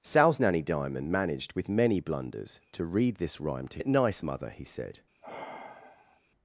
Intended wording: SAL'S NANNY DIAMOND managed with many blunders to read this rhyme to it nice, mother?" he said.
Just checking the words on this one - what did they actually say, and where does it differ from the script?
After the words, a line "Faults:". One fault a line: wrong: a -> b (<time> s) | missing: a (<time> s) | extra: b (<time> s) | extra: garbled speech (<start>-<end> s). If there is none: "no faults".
SAL'S NANNY DIAMOND managed with many blunders to read this rhyme to it nice, mother?" he said.
Faults:
no faults